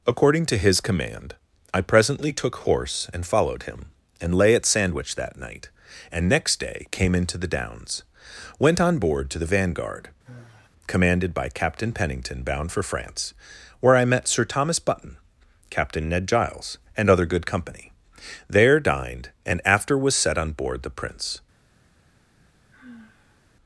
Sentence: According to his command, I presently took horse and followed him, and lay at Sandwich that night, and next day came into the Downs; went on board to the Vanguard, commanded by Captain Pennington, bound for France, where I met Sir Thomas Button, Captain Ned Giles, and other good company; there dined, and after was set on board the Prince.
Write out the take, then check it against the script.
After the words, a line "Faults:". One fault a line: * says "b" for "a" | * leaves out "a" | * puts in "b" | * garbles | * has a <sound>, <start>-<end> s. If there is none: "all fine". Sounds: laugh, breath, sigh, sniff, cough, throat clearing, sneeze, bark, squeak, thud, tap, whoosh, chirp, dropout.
According to his command, I presently took horse and followed him, and lay at Sandwich that night, and next day came into the Downs; went on board to the Vanguard, commanded by Captain Pennington, bound for France, where I met Sir Thomas Button, Captain Ned Giles, and other good company; there dined, and after was set on board the Prince.
Faults:
* has a sigh, 10.3-10.7 s
* has a sigh, 22.7-23.4 s